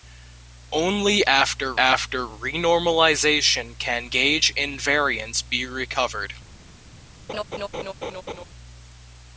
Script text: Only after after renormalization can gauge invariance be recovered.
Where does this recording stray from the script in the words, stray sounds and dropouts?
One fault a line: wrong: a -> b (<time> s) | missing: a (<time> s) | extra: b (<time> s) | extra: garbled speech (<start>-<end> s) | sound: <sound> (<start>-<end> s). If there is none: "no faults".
sound: laugh (7.3-8.4 s)